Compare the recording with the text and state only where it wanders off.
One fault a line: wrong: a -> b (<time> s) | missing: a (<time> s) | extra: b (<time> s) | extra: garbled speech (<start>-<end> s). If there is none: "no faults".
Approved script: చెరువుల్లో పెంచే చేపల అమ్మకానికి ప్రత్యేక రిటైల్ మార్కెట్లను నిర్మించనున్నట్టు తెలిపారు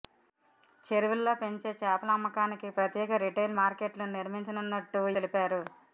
no faults